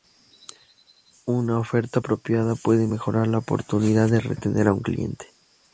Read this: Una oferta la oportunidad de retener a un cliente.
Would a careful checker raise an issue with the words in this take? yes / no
yes